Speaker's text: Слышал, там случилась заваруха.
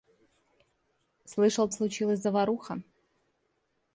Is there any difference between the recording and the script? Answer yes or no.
yes